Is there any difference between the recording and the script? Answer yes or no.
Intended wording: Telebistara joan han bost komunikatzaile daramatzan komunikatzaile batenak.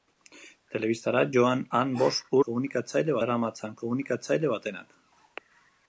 no